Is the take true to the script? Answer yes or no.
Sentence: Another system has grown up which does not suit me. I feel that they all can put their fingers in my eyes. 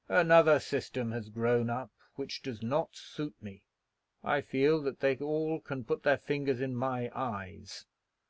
yes